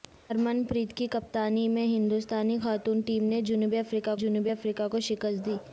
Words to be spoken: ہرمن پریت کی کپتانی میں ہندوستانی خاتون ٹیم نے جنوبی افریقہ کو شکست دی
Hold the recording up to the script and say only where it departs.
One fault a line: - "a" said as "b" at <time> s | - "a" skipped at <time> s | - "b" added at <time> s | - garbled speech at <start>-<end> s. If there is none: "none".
- "جنوبی افریقہ" added at 4.1 s